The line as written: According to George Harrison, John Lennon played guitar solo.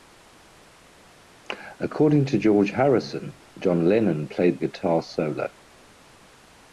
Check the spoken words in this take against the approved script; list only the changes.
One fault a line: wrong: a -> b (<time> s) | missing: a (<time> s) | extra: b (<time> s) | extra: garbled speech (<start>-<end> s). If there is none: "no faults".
no faults